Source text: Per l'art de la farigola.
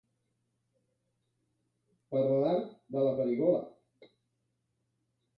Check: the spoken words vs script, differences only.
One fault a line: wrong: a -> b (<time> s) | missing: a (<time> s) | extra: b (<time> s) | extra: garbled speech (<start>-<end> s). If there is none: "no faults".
no faults